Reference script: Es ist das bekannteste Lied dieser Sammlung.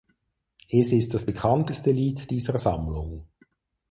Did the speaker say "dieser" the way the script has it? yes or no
yes